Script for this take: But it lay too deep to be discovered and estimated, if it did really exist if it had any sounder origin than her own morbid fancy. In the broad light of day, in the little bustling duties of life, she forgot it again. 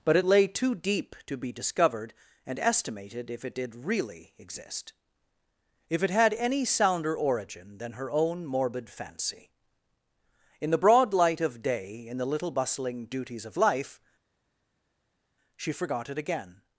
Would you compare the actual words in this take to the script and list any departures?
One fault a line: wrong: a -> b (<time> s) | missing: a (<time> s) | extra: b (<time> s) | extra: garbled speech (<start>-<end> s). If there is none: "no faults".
no faults